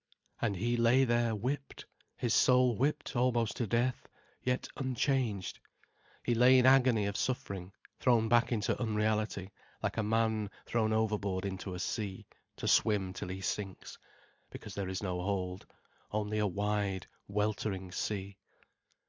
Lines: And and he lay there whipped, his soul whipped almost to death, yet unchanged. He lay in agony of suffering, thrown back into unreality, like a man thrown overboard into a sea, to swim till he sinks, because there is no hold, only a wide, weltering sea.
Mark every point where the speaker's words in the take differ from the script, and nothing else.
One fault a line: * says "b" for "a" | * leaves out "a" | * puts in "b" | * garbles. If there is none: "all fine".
* leaves out "and"